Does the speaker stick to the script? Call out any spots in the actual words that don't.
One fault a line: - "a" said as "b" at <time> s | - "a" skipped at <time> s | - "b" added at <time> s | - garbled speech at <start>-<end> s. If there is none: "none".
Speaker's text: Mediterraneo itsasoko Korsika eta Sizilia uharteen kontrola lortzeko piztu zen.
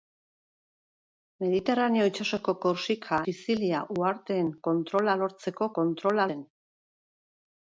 - "eta" skipped at 3.2 s
- "piztu" said as "kontrola" at 5.8 s